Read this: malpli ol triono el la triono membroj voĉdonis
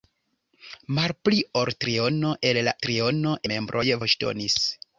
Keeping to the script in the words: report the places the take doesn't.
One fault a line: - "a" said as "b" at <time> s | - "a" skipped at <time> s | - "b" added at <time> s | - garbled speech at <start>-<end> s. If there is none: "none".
none